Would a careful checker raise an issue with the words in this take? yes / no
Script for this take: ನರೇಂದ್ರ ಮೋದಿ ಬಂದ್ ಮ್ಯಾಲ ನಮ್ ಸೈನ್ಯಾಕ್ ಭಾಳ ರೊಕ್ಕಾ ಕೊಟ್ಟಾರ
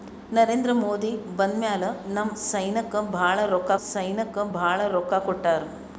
yes